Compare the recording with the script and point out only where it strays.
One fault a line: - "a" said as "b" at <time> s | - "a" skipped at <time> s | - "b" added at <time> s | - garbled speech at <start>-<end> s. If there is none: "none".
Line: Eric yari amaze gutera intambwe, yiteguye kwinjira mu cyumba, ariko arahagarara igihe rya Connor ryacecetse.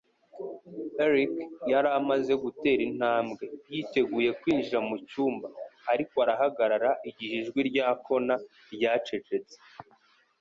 - "ijwi" added at 7.4 s